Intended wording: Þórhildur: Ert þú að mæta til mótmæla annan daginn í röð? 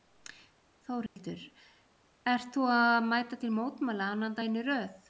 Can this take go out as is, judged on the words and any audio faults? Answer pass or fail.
fail